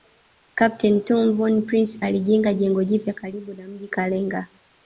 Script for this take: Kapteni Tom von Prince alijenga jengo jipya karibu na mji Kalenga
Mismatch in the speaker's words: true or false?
false